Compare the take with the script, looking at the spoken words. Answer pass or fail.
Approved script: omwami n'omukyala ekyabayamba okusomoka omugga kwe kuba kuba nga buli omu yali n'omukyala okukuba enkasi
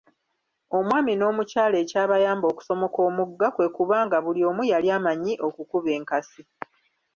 fail